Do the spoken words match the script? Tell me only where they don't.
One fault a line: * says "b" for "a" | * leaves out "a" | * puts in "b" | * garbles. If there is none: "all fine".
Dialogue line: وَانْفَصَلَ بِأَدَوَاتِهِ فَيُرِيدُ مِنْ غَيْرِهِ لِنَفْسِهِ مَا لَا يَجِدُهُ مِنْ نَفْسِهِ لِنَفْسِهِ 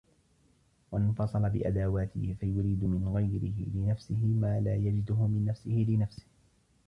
all fine